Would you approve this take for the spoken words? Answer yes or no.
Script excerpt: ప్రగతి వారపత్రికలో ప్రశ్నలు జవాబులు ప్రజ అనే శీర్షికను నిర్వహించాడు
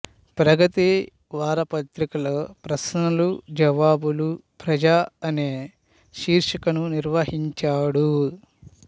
yes